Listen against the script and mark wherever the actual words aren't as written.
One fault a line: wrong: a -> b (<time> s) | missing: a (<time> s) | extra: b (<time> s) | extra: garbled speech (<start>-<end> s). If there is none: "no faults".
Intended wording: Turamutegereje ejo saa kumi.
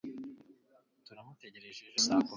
no faults